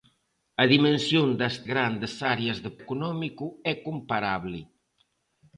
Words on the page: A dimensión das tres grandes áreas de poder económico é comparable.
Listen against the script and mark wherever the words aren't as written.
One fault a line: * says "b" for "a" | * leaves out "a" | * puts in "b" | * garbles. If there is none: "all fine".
* leaves out "tres"
* leaves out "poder"